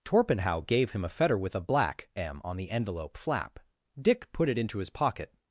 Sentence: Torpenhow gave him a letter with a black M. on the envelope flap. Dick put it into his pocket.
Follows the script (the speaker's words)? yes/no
no